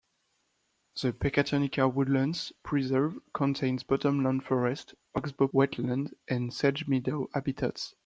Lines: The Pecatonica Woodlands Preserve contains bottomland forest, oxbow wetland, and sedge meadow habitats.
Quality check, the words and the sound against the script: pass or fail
pass